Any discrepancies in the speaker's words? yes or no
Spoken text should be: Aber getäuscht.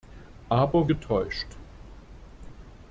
no